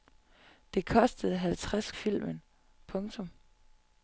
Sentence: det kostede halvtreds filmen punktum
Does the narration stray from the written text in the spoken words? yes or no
no